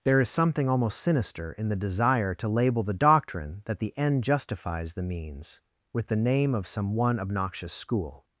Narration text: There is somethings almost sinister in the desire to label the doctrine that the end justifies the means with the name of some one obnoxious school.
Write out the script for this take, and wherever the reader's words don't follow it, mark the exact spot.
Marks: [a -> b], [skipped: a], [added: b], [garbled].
There is [somethings -> something] almost sinister in the desire to label the doctrine that the end justifies the means with the name of some one obnoxious school.